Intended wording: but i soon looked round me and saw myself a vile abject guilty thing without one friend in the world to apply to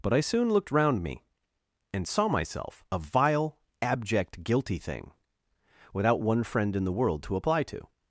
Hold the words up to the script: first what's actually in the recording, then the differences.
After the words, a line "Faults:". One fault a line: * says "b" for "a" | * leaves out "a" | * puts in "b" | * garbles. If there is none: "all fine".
but i soon looked round me and saw myself a vile abject guilty thing without one friend in the world to apply to
Faults:
all fine